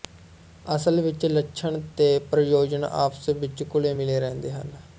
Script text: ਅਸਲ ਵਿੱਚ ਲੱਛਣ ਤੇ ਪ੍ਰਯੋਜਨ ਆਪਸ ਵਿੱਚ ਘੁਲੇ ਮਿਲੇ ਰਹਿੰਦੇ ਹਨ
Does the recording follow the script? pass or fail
pass